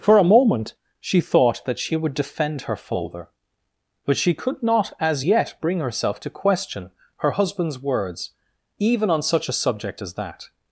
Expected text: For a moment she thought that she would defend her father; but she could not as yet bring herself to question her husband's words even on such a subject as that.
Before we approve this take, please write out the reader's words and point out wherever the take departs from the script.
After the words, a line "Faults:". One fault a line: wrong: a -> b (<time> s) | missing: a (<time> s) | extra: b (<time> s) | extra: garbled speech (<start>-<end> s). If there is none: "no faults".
For a moment she thought that she would defend her father; but she could not as yet bring herself to question her husband's words even on such a subject as that.
Faults:
no faults